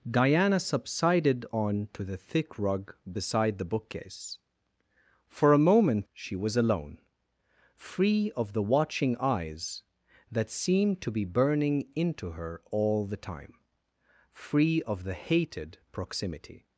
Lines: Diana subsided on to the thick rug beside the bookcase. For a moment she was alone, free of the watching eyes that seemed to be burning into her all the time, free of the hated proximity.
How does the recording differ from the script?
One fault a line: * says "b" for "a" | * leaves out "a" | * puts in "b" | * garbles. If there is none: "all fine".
all fine